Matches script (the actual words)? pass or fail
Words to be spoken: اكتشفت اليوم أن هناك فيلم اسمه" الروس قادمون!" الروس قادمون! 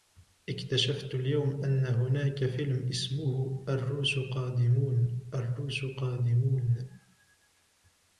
pass